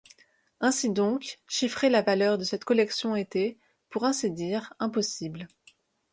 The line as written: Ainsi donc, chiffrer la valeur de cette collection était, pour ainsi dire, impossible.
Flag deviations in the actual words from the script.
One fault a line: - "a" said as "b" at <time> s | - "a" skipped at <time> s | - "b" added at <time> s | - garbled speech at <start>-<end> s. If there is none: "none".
none